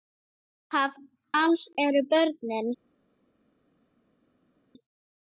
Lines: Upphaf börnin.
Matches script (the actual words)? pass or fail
fail